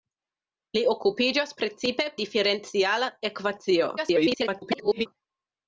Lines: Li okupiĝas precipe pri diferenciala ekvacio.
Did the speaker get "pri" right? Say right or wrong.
wrong